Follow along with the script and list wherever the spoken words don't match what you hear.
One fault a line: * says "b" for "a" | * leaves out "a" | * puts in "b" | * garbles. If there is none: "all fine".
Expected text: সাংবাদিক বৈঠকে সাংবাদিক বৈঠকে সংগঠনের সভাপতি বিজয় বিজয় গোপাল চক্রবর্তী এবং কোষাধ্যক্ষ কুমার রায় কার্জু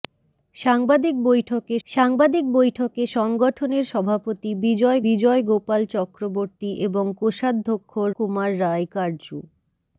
all fine